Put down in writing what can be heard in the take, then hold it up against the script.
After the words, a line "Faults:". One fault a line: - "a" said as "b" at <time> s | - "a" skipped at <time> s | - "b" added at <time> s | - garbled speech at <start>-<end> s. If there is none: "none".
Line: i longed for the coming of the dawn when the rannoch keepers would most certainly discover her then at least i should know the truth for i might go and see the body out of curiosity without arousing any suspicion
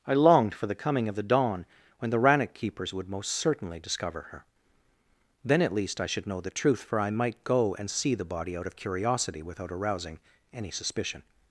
i longed for the coming of the dawn when the rannoch keepers would most certainly discover her then at least i should know the truth for i might go and see the body out of curiosity without arousing any suspicion
Faults:
none